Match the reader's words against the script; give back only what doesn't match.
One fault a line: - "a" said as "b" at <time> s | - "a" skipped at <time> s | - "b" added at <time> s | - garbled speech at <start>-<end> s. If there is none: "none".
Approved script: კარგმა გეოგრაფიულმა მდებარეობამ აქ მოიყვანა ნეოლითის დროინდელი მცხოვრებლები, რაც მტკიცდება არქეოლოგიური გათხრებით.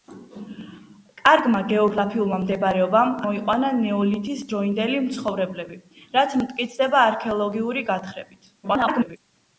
- "აქ" skipped at 3.1 s
- garbled speech at 8.6-9.2 s